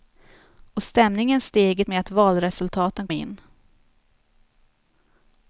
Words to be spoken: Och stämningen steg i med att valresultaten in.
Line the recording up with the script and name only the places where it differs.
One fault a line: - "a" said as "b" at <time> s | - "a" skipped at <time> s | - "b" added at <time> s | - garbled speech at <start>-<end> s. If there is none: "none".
none